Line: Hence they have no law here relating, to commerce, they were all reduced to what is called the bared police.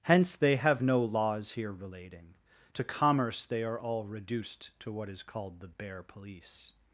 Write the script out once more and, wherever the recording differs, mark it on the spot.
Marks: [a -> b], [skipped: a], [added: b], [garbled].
Hence they have no [law -> laws] here relating, to commerce, they [were -> are] all reduced to what is called the [bared -> bare] police.